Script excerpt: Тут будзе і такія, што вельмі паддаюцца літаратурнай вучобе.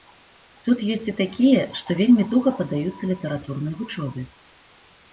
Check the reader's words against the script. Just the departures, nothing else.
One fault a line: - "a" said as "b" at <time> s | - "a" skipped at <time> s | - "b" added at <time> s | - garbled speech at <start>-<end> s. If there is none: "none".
- "будзе" said as "ёсць" at 0.9 s
- "туга" added at 2.4 s